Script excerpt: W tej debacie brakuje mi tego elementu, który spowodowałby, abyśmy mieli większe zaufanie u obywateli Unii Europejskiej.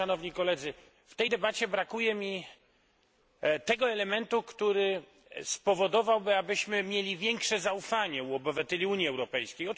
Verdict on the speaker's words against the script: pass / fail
pass